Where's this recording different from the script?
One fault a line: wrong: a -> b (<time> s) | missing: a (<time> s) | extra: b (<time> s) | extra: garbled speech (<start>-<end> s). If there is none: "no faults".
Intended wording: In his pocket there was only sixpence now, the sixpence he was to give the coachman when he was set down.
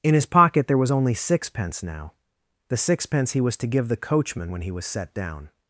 no faults